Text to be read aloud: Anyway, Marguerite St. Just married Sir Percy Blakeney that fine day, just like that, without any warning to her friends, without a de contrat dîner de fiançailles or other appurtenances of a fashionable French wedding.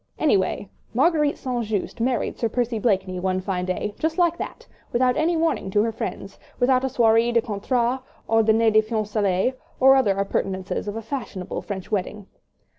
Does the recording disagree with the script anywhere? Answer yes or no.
yes